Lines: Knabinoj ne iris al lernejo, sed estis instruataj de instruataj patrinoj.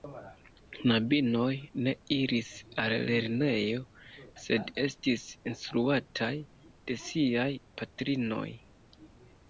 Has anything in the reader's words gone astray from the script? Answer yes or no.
yes